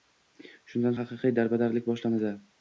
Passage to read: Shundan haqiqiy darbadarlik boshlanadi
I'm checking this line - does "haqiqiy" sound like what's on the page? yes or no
yes